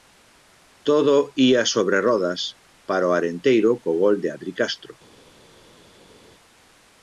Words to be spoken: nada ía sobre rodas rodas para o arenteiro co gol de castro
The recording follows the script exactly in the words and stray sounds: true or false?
false